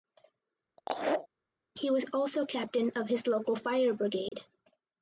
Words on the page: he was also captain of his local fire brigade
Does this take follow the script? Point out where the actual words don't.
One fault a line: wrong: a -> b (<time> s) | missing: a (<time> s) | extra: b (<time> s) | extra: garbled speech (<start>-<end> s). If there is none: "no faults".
no faults